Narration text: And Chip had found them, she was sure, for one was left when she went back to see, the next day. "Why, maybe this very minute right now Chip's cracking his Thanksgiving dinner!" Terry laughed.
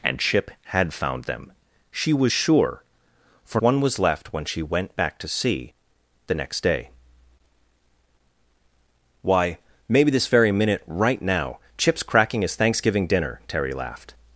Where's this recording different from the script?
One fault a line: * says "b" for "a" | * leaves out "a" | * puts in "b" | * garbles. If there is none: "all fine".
all fine